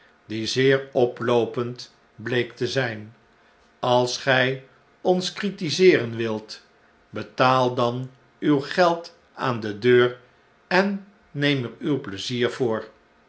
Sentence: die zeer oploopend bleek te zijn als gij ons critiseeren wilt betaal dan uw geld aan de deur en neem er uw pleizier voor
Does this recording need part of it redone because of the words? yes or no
no